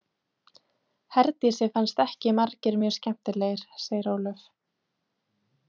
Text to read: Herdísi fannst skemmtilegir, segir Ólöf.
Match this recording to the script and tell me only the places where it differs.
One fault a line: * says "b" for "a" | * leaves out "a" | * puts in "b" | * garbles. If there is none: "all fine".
* puts in "ekki margir mjög"